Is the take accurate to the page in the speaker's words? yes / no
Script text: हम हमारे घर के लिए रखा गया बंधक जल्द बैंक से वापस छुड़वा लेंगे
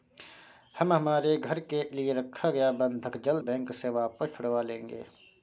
yes